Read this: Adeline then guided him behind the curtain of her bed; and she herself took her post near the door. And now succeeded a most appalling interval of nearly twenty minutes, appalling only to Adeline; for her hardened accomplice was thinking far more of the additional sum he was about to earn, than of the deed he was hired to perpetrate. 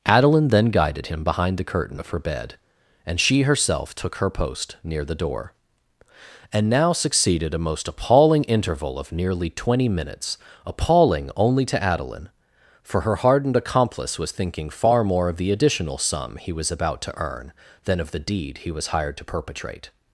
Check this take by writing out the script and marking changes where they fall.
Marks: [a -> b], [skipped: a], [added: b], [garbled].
Adeline then guided him behind the curtain of her bed; and she herself took her post near the door. And now succeeded a most appalling interval of nearly twenty minutes, appalling only to Adeline; for her hardened accomplice was thinking far more of the additional sum he was about to earn, than of the deed he was hired to perpetrate.